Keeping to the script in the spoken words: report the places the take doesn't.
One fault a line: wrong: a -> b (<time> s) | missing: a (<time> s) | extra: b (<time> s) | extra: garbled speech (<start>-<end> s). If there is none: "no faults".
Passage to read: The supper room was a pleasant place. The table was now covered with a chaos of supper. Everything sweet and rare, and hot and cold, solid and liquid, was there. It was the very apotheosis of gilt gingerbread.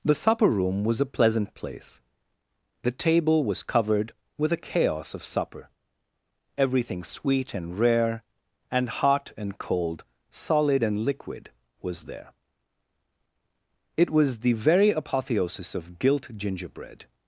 missing: now (3.6 s)